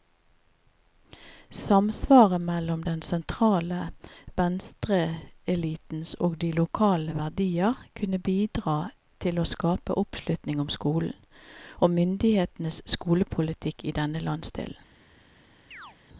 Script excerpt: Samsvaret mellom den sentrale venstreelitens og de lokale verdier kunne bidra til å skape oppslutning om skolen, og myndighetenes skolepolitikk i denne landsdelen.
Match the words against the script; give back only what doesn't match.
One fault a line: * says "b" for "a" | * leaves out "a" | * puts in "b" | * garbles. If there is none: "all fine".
all fine